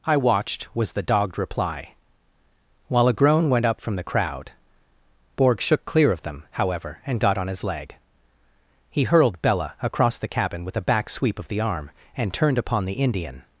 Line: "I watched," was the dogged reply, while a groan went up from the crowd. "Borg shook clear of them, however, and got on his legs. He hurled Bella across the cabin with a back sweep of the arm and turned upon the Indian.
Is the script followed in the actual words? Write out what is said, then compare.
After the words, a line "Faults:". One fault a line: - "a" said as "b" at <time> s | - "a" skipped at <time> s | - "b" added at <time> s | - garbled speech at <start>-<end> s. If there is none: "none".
"I watched," was the dogged reply, while a groan went up from the crowd. "Borg shook clear of them, however, and got on his leg. He hurled Bella across the cabin with a back sweep of the arm and turned upon the Indian.
Faults:
- "legs" said as "leg" at 7.6 s